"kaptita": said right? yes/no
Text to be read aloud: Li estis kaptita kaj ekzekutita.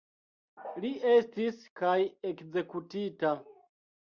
no